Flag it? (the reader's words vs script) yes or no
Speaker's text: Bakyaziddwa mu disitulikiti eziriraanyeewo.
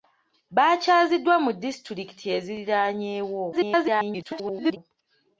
yes